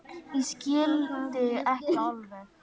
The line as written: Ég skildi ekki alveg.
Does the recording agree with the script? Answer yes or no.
yes